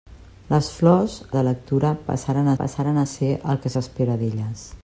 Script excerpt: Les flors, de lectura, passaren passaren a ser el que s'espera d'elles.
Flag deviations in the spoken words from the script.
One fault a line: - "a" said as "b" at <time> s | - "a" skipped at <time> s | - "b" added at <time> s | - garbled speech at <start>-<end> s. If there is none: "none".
none